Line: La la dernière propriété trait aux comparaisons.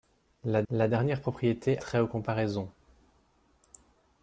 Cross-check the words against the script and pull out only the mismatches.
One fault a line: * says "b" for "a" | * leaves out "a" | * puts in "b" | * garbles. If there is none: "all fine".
all fine